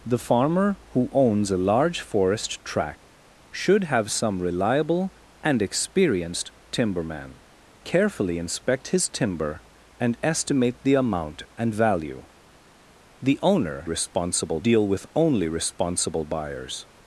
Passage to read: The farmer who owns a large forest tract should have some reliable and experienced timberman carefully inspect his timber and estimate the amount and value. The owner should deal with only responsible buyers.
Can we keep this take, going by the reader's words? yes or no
no